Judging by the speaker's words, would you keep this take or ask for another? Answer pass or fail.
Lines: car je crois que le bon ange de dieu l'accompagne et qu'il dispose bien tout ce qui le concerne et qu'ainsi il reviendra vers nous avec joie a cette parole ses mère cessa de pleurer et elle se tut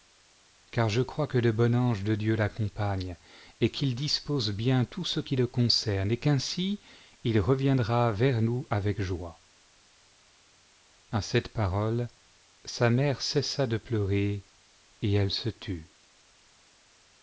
fail